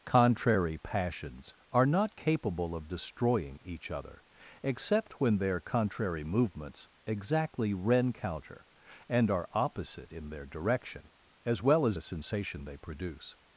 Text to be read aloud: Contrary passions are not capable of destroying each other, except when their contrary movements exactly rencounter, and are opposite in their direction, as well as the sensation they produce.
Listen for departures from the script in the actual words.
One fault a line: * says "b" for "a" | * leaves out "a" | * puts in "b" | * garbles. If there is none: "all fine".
all fine